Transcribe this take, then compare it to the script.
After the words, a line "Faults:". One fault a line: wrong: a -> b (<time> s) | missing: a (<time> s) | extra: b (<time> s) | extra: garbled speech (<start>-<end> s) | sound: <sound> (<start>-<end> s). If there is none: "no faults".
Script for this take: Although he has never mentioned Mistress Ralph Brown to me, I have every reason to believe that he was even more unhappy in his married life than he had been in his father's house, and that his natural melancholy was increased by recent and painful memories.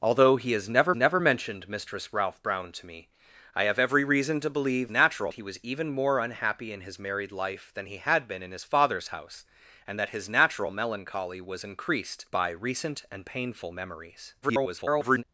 Although he has never never mentioned Mistress Ralph Brown to me, I have every reason to believe natural he was even more unhappy in his married life than he had been in his father's house, and that his natural melancholy was increased by recent and painful memories. [garbled]
Faults:
extra: never (0.9 s)
wrong: that -> natural (4.9 s)
extra: garbled speech (14.4-15.2 s)